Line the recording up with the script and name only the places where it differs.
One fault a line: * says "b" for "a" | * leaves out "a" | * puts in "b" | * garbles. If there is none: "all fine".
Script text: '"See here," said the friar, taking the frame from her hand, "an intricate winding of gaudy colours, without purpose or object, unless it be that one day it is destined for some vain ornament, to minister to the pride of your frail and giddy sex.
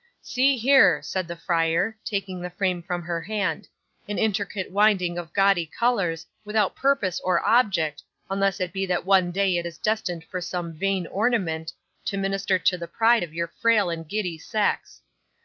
all fine